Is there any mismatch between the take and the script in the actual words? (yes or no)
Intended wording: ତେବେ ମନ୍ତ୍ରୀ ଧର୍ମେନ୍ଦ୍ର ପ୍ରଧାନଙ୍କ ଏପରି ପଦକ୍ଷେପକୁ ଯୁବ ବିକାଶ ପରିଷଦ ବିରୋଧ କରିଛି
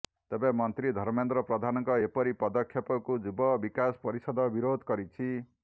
no